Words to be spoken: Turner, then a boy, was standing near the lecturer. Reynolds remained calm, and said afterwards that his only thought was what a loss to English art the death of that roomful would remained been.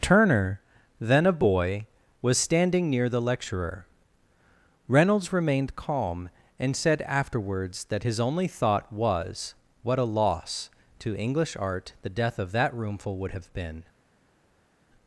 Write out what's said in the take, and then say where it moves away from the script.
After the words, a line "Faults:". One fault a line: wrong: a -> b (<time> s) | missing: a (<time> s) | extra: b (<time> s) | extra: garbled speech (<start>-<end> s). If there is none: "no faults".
Turner, then a boy, was standing near the lecturer. Reynolds remained calm, and said afterwards that his only thought was what a loss to English art the death of that roomful would have been.
Faults:
wrong: remained -> have (13.3 s)